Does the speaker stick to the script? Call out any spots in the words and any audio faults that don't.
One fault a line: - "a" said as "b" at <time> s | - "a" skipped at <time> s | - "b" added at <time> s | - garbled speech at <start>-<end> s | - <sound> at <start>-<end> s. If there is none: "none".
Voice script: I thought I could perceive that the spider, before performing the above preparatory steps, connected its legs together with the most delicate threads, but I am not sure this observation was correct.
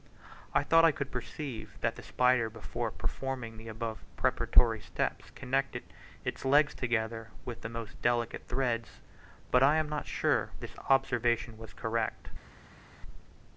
none